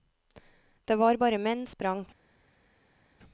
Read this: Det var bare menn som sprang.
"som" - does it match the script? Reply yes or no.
no